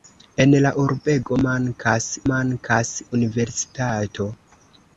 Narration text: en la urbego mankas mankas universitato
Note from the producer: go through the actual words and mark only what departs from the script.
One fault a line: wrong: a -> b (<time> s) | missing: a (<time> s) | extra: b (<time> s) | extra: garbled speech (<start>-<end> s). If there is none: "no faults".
no faults